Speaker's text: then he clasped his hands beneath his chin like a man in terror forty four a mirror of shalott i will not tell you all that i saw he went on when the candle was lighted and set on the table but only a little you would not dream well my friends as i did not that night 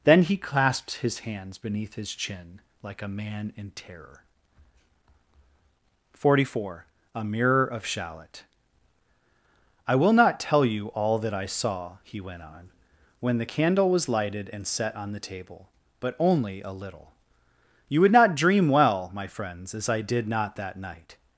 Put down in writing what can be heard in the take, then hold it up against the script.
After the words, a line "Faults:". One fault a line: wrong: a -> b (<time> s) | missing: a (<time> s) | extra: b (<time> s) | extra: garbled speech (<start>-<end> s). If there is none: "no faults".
then he clasped his hands beneath his chin like a man in terror forty four a mirror of shalott i will not tell you all that i saw he went on when the candle was lighted and set on the table but only a little you would not dream well my friends as i did not that night
Faults:
no faults